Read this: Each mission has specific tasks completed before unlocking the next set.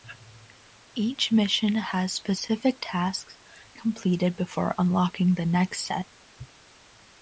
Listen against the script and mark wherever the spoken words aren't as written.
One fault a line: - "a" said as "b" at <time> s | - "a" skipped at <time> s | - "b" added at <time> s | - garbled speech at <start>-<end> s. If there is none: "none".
none